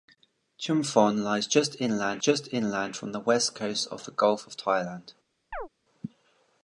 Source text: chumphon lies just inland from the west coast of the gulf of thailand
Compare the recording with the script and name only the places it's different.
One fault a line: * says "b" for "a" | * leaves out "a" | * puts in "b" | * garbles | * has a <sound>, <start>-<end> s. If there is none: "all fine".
* puts in "just inland"
* has a chirp, 5.5-5.7 s